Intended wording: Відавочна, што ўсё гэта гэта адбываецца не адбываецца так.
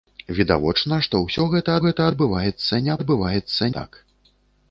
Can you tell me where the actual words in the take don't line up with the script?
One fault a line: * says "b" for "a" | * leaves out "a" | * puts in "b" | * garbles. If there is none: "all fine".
all fine